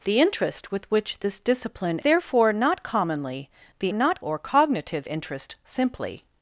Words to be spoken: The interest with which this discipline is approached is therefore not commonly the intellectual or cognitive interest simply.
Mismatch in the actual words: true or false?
true